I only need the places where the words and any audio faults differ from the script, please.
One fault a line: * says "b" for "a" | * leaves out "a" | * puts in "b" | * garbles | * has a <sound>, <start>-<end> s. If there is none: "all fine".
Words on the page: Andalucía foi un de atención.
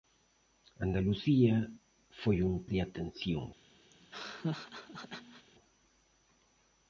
* has a laugh, 3.9-5.5 s